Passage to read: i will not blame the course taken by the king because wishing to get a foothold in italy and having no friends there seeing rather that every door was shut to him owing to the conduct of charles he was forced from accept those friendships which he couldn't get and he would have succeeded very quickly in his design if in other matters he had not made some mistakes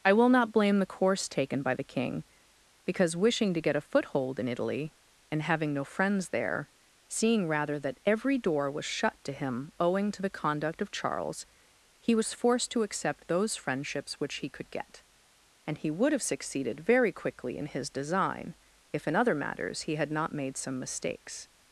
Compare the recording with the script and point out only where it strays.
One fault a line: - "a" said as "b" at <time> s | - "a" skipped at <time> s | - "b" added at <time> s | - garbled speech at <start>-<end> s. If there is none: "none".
- "from" said as "to" at 12.7 s
- "couldn't" said as "could" at 14.5 s